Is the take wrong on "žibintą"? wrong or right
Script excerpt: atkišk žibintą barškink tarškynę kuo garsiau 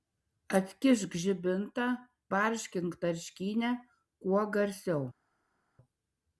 right